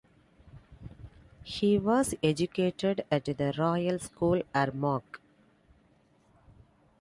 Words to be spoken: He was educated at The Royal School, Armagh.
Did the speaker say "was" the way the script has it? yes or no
yes